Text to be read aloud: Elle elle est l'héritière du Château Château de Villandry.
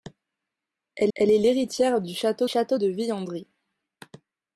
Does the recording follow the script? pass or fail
pass